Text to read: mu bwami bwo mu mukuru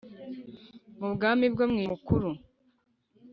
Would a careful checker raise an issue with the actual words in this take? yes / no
no